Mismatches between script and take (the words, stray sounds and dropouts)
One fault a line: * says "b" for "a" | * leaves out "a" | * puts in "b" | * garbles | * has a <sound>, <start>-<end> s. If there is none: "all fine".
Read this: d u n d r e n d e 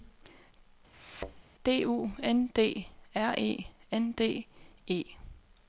* has a thud, 0.9-1.4 s